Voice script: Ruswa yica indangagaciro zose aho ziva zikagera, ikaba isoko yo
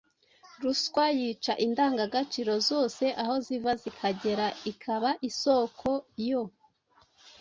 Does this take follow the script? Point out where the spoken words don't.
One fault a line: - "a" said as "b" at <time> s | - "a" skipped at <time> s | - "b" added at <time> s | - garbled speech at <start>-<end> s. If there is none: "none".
none